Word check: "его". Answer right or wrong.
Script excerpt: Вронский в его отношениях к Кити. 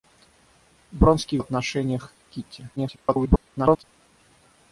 wrong